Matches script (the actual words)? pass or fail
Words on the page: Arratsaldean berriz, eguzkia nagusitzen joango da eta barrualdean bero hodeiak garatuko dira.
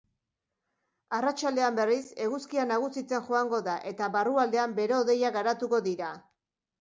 pass